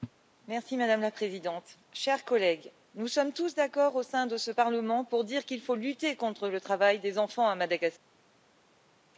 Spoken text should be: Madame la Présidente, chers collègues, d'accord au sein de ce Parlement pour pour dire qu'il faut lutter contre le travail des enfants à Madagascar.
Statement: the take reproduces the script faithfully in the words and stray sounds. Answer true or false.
false